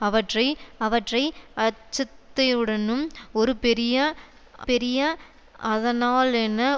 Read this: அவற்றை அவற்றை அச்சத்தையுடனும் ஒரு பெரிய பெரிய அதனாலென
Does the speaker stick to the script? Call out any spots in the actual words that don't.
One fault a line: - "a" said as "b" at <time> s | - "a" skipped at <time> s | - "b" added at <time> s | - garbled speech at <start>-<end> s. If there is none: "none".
none